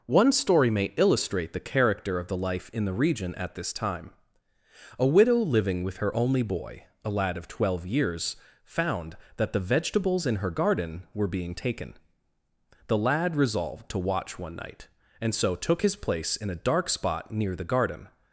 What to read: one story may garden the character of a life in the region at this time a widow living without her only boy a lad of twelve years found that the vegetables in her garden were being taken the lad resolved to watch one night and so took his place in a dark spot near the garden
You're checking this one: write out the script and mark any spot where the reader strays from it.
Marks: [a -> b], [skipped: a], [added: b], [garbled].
one story may [garden -> illustrate] the character of [a -> the] life in the region at this time a widow living [without -> with] her only boy a lad of twelve years found that the vegetables in her garden were being taken the lad resolved to watch one night and so took his place in a dark spot near the garden